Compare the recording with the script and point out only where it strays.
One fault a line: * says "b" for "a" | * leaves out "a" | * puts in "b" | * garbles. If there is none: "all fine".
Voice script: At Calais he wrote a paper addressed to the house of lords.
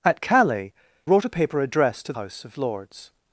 * leaves out "he"
* leaves out "the"